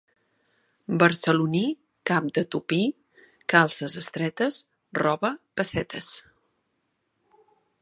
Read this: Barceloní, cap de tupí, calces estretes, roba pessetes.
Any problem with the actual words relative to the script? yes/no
no